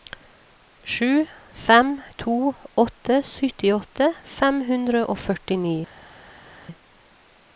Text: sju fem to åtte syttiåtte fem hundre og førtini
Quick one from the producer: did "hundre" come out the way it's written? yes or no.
yes